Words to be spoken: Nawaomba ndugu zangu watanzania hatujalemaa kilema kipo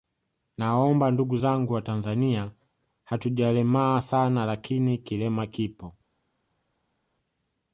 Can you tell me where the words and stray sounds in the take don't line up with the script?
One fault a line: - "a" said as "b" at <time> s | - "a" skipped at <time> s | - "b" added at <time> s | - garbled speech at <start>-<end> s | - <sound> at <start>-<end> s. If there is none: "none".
- "sana lakini" added at 4.0 s